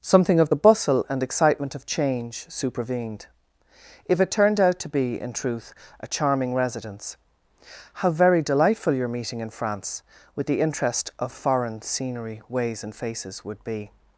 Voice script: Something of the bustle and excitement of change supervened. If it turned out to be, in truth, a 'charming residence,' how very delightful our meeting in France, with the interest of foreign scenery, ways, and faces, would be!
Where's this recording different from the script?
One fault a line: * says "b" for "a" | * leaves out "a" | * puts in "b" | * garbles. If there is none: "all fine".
* says "your" for "our"